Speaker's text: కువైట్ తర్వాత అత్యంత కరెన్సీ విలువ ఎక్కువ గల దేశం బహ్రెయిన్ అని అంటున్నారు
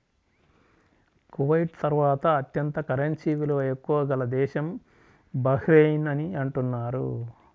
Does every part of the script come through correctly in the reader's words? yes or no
yes